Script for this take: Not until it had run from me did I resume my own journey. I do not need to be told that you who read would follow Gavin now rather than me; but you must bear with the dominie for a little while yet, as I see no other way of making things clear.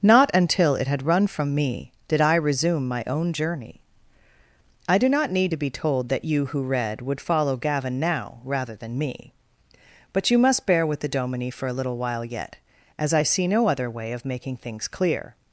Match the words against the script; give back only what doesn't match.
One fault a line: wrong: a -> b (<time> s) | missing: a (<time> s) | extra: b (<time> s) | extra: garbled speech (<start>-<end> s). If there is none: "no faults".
no faults